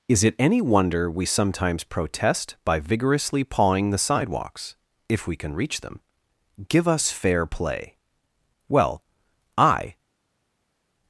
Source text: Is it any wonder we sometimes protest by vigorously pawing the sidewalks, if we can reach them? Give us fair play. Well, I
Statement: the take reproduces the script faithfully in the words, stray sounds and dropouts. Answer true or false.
true